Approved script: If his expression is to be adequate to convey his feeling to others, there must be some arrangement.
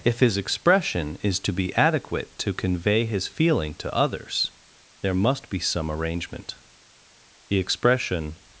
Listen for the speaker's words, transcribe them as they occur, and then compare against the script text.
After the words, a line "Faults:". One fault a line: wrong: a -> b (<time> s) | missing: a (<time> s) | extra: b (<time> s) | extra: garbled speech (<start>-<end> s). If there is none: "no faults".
If his expression is to be adequate to convey his feeling to others, there must be some arrangement. The expression
Faults:
extra: The expression (7.5 s)